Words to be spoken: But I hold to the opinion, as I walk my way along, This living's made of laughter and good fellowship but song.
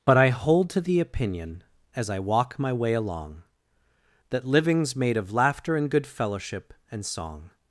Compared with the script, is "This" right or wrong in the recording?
wrong